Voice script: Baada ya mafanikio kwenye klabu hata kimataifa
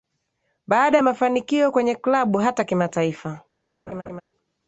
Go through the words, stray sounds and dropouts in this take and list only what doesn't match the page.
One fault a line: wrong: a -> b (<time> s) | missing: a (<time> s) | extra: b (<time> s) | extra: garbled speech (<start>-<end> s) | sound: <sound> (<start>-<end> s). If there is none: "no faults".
sound: laugh (3.9-4.2 s)